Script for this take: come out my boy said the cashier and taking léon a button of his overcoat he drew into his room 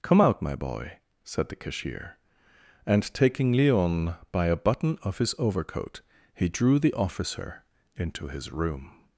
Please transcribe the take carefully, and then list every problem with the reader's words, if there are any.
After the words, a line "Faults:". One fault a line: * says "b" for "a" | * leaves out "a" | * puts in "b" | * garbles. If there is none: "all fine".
come out my boy said the cashier and taking léon by a button of his overcoat he drew the officer into his room
Faults:
* puts in "by"
* puts in "the officer"